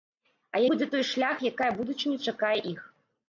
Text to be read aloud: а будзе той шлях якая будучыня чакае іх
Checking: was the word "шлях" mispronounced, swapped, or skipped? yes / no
no